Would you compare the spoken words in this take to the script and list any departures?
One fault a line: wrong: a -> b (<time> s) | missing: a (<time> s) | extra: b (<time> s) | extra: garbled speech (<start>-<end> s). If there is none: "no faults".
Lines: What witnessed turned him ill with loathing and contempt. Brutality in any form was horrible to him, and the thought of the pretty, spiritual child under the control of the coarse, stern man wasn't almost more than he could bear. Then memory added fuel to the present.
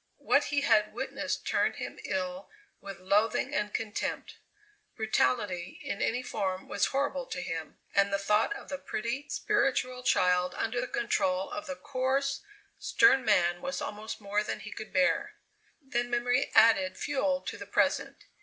extra: he had (0.5 s)
wrong: wasn't -> was (13.6 s)